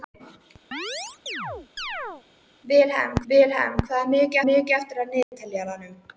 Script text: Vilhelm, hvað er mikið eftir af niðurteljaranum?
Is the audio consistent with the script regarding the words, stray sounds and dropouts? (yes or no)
no